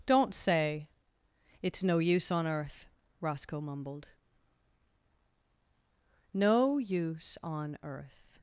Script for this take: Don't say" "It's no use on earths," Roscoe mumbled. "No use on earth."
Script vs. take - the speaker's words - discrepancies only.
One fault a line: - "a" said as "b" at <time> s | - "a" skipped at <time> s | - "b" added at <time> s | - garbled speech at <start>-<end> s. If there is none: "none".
- "earths" said as "earth" at 2.5 s